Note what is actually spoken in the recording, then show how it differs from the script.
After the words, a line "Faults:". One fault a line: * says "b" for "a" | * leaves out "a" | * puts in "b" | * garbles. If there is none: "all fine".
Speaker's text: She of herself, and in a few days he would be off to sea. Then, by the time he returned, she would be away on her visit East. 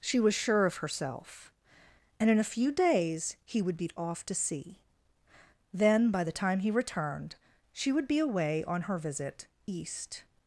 She was sure of herself, and in a few days he would be off to sea. Then, by the time he returned, she would be away on her visit East.
Faults:
* puts in "was sure"